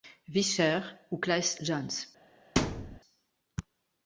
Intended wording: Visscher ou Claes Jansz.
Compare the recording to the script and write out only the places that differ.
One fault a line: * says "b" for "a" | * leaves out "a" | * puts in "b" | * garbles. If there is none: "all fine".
all fine